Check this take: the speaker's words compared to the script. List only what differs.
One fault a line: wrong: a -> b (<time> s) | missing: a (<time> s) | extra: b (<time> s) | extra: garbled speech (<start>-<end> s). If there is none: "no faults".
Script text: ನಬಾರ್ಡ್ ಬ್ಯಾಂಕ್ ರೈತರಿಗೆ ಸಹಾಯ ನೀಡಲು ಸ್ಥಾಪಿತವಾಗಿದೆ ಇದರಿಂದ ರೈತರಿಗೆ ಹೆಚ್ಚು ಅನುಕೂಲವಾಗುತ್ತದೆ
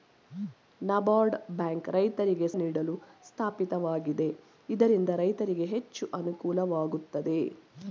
missing: ಸಹಾಯ (2.5 s)